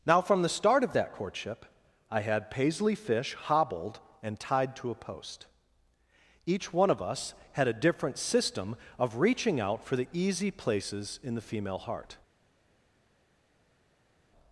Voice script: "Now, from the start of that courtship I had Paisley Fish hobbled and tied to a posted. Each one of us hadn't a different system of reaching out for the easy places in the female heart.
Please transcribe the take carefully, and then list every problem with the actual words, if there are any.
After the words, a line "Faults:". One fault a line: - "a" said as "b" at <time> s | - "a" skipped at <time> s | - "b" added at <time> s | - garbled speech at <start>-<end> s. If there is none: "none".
"Now, from the start of that courtship I had Paisley Fish hobbled and tied to a post. Each one of us had a different system of reaching out for the easy places in the female heart.
Faults:
- "posted" said as "post" at 4.9 s
- "hadn't" said as "had" at 7.5 s